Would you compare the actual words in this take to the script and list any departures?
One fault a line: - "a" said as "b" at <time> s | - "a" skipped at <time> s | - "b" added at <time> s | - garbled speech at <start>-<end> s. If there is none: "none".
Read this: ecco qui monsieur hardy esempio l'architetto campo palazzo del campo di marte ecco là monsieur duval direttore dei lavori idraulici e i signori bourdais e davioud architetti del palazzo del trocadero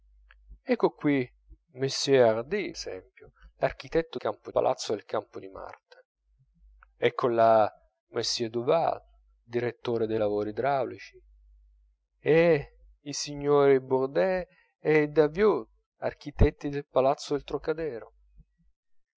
none